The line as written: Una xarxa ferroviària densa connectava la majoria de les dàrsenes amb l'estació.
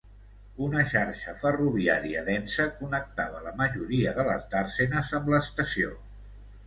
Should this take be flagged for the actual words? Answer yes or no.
no